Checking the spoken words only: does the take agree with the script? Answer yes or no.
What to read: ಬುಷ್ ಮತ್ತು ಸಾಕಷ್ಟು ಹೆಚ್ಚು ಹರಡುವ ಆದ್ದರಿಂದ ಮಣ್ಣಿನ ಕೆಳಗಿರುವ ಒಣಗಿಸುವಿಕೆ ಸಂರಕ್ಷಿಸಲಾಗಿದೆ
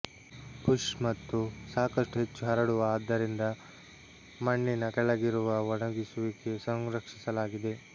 yes